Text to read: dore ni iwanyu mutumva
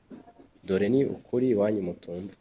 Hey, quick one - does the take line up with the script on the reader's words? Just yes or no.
no